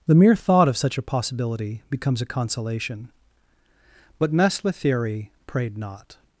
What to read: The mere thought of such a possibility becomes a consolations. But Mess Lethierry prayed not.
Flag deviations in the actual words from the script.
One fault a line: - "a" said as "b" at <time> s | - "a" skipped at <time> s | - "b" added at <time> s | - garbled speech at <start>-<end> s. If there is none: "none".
- "consolations" said as "consolation" at 2.2 s